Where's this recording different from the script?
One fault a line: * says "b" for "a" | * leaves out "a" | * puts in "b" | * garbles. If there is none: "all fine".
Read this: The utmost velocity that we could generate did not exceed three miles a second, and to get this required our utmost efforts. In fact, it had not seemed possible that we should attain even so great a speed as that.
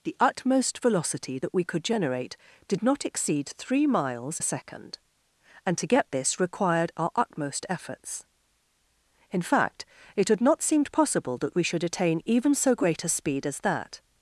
all fine